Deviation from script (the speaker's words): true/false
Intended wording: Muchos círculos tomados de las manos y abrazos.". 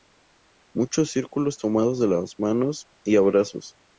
false